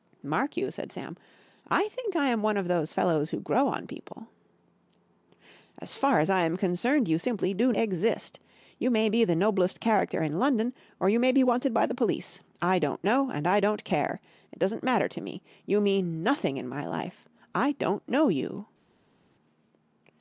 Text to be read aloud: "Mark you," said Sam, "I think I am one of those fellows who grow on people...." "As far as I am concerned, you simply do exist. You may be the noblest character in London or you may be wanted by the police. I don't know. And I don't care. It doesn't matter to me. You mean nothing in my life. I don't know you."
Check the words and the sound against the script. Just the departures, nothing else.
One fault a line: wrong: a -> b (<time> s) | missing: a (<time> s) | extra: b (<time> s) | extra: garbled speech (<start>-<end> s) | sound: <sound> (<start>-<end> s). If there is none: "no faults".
no faults